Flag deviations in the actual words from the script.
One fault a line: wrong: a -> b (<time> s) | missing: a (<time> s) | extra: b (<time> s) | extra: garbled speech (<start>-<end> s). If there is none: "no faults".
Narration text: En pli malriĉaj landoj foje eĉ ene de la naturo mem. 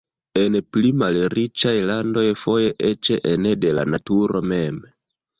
no faults